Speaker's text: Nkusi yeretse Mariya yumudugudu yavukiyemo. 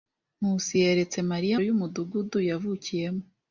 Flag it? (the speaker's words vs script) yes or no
no